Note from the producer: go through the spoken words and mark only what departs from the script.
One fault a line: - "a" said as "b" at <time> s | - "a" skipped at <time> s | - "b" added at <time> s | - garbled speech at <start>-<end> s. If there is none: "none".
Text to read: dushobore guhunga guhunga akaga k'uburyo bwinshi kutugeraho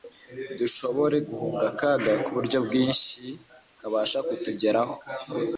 - "guhunga" skipped at 1.6 s
- "kabasha" added at 3.8 s